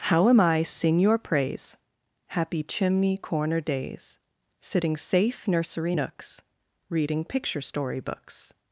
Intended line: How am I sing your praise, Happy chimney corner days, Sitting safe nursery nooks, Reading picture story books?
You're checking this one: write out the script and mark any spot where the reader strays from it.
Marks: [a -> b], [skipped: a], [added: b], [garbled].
How am I sing your praise, Happy chimney corner days, Sitting safe nursery nooks, Reading picture story books?